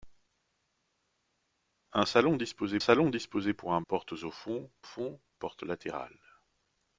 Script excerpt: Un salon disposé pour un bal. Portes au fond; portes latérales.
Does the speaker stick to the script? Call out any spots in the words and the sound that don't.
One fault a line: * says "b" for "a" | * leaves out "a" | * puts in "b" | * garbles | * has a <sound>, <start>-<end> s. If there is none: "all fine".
* puts in "salon disposé"
* leaves out "bal"
* puts in "fond"